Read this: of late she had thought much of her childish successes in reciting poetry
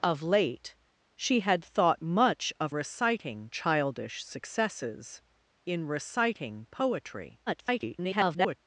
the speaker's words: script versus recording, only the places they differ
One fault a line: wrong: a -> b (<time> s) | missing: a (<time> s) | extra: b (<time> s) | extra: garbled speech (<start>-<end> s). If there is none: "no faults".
wrong: her -> reciting (2.7 s)
extra: garbled speech (7.5-8.6 s)